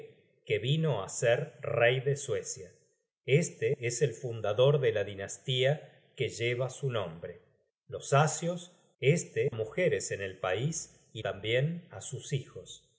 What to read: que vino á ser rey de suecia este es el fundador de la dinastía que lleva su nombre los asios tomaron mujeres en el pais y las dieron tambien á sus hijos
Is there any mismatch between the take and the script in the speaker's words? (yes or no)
yes